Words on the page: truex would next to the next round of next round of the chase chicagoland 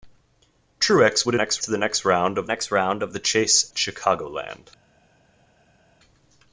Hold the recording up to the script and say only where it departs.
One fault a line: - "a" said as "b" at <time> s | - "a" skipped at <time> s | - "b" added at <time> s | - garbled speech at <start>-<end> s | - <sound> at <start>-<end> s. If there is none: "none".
none